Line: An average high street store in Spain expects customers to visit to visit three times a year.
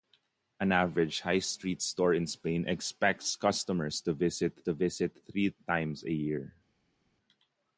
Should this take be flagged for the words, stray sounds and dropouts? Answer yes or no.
no